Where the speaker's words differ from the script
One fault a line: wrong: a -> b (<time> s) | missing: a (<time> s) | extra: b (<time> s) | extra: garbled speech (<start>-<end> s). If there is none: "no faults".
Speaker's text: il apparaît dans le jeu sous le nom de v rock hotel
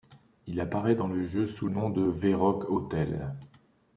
missing: le (1.7 s)